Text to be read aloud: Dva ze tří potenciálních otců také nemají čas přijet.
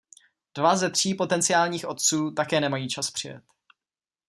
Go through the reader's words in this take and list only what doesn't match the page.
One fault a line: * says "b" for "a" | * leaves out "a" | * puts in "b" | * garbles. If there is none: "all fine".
all fine